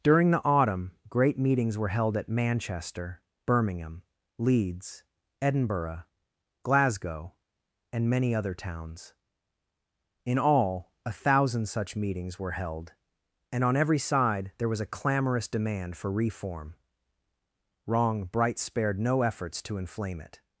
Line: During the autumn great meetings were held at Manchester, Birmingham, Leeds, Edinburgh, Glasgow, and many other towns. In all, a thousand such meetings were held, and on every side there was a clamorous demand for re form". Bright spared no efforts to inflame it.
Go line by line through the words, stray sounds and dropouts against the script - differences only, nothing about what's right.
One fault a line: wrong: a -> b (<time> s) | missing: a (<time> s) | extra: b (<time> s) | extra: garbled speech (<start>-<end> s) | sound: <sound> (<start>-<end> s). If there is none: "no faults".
wrong: re form -> reform wrong (16.1 s)